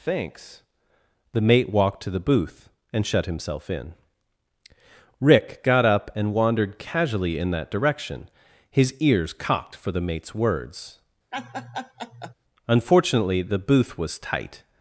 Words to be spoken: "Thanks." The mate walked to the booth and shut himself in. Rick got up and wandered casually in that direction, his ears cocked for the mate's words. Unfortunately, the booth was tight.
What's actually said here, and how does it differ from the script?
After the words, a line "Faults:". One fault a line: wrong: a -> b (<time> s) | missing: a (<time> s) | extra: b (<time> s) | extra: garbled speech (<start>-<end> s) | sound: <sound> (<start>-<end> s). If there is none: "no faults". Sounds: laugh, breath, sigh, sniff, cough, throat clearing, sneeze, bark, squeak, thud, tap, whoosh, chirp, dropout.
"Thanks." The mate walked to the booth and shut himself in. Rick got up and wandered casually in that direction, his ears cocked for the mate's words. Unfortunately, the booth was tight.
Faults:
sound: laugh (11.3-12.3 s)